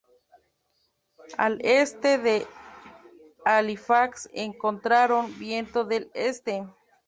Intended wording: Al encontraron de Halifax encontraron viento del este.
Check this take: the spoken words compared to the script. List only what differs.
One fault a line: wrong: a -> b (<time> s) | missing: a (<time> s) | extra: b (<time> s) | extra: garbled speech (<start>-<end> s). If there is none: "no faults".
wrong: encontraron -> este (1.6 s)